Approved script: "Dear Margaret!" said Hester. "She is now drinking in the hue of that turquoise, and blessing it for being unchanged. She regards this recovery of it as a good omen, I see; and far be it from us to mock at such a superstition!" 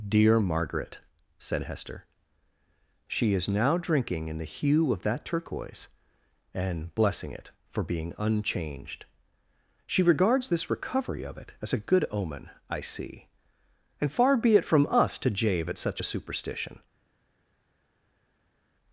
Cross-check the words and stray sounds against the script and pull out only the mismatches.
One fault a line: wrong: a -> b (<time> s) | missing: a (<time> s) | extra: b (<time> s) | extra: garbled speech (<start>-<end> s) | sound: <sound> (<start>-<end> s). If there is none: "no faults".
wrong: mock -> jave (15.3 s)